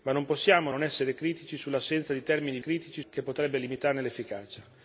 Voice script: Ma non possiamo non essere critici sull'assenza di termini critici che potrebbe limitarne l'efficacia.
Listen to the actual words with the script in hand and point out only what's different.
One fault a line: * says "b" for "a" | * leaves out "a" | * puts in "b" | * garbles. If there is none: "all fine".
all fine